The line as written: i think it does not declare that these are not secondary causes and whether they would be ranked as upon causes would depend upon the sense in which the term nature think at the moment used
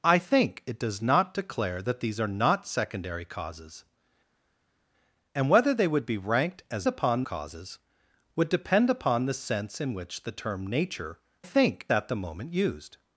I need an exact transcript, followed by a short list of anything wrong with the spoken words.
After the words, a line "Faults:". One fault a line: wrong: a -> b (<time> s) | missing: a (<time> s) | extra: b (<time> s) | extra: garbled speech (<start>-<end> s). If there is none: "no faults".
i think it does not declare that these are not secondary causes and whether they would be ranked as upon causes would depend upon the sense in which the term nature think at the moment used
Faults:
no faults